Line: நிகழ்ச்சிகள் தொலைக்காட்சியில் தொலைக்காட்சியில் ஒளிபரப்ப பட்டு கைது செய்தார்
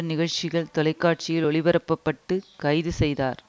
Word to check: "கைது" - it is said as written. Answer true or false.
true